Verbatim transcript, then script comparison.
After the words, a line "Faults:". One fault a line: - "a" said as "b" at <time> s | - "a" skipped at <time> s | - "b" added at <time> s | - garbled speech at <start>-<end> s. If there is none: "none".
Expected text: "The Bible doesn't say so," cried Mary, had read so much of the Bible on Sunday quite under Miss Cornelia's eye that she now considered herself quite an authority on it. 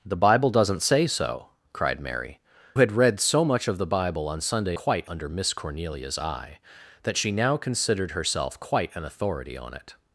"The Bible doesn't say so," cried Mary, had read so much of the Bible on Sunday quite under Miss Cornelia's eye that she now considered herself quite an authority on it.
Faults:
none